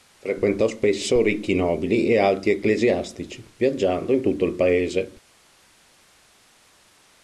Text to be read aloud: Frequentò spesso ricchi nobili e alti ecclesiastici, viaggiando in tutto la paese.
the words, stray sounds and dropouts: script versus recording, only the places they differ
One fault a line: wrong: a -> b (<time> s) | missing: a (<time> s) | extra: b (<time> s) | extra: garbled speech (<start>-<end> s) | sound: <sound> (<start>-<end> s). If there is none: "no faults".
wrong: la -> il (4.4 s)